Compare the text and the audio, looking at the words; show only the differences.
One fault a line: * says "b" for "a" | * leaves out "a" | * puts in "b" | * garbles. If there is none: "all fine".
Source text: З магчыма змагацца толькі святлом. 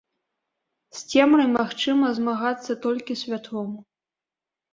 * puts in "цемрай"